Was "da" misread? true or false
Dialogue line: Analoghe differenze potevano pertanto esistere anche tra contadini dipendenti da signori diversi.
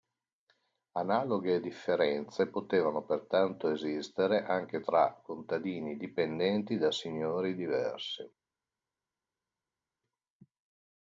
false